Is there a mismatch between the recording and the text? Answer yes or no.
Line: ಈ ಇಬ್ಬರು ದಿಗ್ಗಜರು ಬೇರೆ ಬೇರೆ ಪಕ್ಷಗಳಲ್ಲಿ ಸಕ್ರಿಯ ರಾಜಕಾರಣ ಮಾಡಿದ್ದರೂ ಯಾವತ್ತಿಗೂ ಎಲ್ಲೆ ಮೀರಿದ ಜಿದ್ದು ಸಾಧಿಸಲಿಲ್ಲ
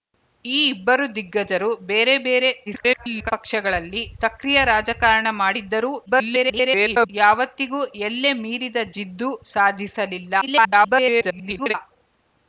yes